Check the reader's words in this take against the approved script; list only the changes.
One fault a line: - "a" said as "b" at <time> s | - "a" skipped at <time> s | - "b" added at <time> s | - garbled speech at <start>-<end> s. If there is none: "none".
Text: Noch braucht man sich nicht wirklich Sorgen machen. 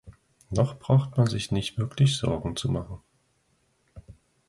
- "zu" added at 2.5 s